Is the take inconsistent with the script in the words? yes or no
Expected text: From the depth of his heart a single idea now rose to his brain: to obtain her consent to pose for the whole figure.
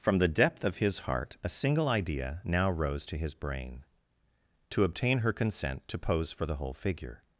no